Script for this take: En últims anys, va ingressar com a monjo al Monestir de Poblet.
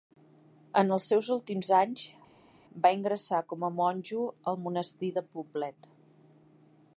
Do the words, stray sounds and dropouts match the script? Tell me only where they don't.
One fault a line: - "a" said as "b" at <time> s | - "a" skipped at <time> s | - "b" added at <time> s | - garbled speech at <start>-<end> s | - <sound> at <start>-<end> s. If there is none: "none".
- "els seus" added at 0.9 s